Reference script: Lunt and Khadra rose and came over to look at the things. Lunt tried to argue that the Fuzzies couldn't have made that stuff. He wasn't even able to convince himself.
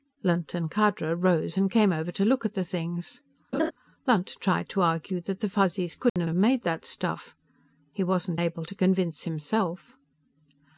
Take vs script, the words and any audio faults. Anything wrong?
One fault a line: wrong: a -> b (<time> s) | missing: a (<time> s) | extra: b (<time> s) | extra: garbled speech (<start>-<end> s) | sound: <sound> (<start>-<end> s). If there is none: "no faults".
sound: laugh (3.5-3.7 s)
sound: dropout (6.1-6.2 s)
extra: have (6.2 s)
missing: even (8.4 s)